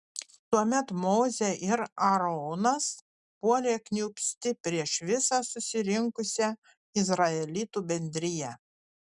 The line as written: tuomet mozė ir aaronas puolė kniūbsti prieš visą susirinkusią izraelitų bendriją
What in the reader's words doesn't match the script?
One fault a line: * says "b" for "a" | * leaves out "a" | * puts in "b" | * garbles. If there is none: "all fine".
all fine